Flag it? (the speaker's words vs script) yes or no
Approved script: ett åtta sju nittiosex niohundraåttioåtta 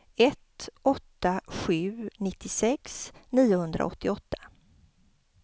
no